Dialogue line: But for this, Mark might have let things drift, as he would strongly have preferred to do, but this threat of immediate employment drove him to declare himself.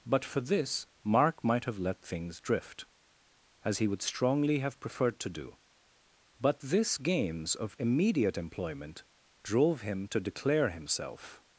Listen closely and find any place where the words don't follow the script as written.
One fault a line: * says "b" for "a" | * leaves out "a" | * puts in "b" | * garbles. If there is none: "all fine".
* says "games" for "threat"